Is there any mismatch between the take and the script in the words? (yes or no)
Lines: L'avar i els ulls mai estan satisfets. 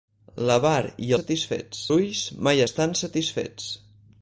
yes